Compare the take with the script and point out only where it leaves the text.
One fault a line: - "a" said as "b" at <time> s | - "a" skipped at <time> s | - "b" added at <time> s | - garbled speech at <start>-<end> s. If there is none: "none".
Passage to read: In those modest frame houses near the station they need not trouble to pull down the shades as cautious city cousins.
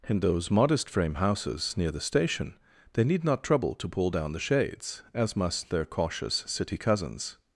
- "must their" added at 5.3 s